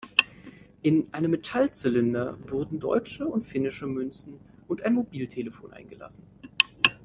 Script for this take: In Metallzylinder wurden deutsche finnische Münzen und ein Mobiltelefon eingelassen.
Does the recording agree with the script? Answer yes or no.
no